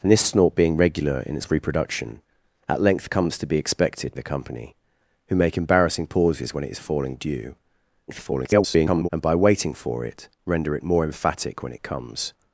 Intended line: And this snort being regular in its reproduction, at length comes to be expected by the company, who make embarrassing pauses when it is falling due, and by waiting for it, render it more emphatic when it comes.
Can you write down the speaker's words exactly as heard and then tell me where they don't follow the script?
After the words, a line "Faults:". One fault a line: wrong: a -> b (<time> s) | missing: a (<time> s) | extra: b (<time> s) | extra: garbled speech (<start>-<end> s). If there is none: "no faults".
And this snort being regular in its reproduction, at length comes to be expected the company, who make embarrassing pauses when it is falling due, [garbled] and by waiting for it, render it more emphatic when it comes.
Faults:
missing: by (4.2 s)
extra: garbled speech (8.1-9.1 s)